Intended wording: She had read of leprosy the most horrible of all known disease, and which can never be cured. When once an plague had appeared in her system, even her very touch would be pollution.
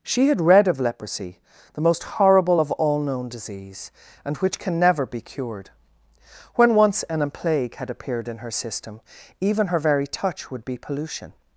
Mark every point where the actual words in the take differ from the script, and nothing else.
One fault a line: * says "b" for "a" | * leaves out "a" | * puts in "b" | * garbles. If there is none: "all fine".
all fine